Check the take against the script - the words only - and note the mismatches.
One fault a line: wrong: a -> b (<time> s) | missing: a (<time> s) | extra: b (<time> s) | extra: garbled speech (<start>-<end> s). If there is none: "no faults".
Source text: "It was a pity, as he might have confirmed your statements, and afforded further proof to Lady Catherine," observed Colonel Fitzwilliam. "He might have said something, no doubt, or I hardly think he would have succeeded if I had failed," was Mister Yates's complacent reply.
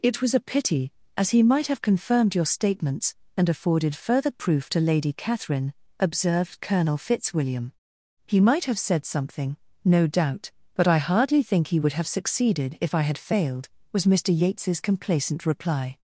wrong: or -> but (10.7 s)